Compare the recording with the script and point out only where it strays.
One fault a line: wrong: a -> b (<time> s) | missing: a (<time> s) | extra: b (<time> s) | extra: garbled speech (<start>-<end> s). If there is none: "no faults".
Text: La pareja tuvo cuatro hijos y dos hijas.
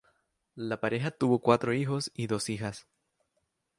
no faults